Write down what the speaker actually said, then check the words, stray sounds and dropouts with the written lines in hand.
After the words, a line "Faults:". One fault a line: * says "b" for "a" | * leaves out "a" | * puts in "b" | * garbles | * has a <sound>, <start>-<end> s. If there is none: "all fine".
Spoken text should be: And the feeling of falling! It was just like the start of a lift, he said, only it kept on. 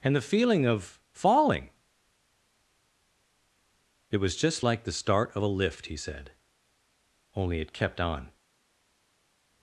And the feeling of falling! It was just like the start of a lift, he said, only it kept on.
Faults:
all fine